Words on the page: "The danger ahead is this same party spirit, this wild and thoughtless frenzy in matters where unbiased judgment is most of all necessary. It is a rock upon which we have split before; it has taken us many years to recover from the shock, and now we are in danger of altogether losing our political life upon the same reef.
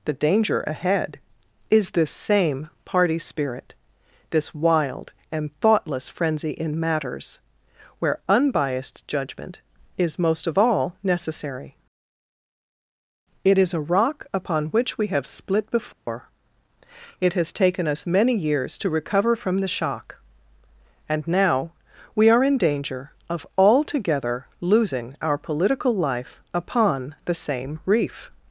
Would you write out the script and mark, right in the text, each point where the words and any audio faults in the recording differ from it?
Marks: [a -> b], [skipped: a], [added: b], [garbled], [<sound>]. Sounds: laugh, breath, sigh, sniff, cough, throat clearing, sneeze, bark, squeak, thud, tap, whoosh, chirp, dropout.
"The danger ahead is this same party spirit, this wild and thoughtless frenzy in matters where unbiased judgment is most of all necessary. It is a rock upon which we have split before; [dropout] it has taken us many years to recover from the shock, and now we are in danger of altogether losing our political life upon the same reef.